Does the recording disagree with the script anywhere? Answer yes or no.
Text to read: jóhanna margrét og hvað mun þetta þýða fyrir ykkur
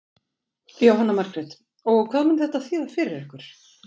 no